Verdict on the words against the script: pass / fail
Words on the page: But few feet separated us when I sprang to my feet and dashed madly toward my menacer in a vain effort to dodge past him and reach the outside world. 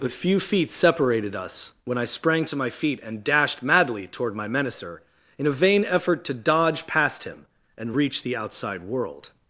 pass